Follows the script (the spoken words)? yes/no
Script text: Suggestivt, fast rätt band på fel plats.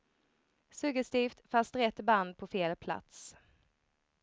yes